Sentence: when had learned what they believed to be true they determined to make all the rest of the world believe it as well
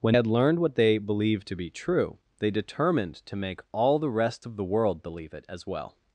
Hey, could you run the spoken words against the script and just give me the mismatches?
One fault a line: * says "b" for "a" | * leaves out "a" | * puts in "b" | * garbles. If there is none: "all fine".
all fine